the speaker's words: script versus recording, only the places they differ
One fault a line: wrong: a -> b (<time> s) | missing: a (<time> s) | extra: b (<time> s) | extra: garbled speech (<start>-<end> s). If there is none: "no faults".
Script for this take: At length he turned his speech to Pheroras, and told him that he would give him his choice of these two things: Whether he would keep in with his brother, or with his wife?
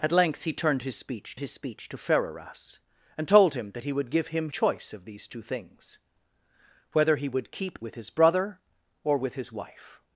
extra: his speech (1.4 s)
missing: his (4.5 s)
missing: in (7.8 s)